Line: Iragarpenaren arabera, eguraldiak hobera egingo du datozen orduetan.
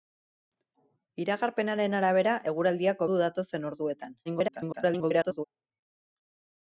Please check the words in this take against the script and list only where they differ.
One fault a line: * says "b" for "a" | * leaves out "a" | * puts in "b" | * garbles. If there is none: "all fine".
* leaves out "hobera egingo"
* garbles